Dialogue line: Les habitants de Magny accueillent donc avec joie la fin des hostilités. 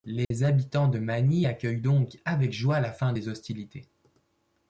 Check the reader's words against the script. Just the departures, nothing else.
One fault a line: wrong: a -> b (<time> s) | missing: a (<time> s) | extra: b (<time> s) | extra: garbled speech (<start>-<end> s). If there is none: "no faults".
no faults